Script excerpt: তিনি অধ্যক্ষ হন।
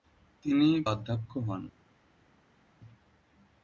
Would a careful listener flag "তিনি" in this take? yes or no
no